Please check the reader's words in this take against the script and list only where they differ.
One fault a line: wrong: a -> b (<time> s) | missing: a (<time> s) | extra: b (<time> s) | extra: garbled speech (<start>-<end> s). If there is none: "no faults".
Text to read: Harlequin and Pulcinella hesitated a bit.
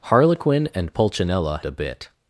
missing: hesitated (1.6 s)